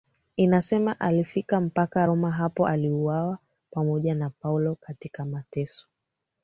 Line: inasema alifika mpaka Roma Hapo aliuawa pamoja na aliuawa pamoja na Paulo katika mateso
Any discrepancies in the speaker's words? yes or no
yes